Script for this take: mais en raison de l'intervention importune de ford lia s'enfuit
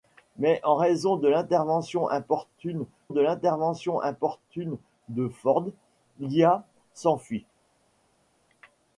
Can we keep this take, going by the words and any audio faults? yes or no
no